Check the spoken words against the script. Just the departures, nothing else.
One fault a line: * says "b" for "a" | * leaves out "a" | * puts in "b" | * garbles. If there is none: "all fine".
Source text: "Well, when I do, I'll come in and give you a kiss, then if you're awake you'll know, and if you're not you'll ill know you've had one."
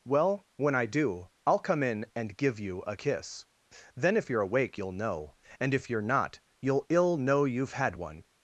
all fine